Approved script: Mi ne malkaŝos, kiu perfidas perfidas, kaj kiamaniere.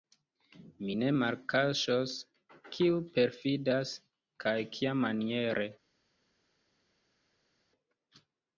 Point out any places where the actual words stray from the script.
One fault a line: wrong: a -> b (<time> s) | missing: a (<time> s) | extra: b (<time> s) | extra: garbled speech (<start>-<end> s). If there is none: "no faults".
missing: perfidas (3.9 s)